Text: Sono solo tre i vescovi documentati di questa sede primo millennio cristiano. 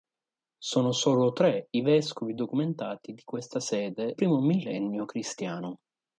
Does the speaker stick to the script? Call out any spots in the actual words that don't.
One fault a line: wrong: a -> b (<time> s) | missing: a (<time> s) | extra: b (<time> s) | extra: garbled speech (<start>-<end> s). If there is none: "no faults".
no faults